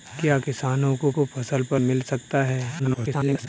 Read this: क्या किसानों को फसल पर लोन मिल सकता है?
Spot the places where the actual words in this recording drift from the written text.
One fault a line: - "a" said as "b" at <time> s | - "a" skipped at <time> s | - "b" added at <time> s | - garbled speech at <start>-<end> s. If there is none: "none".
- "को" added at 1.1 s
- "लोन" skipped at 1.8 s
- garbled speech at 2.8-3.5 s